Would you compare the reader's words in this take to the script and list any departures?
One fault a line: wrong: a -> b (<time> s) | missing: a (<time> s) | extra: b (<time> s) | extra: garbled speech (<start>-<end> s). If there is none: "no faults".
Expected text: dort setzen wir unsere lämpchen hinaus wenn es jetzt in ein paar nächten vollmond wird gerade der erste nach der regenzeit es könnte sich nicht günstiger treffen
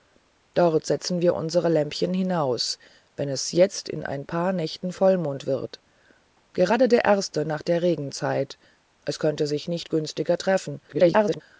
extra: garbled speech (10.9-11.4 s)